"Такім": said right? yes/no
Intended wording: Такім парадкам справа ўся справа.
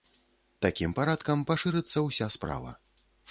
yes